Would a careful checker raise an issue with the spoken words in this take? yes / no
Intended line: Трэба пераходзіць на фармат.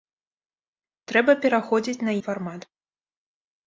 no